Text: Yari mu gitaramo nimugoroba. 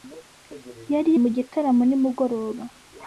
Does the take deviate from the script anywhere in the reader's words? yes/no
no